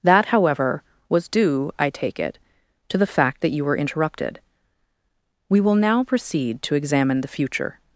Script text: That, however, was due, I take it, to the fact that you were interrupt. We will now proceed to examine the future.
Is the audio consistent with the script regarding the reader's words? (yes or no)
no